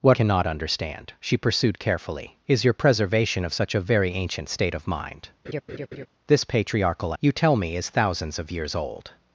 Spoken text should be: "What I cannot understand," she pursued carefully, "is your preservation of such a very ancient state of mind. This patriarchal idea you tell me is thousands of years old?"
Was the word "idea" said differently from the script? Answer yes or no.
yes